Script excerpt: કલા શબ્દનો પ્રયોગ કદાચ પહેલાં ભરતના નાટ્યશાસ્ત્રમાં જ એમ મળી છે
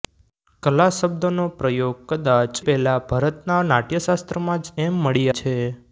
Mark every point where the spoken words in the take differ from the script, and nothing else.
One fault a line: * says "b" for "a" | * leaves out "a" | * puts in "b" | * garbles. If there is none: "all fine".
all fine